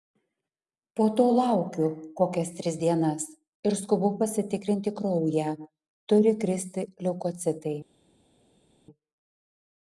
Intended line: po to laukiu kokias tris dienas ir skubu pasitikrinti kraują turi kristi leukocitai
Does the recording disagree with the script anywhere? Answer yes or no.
no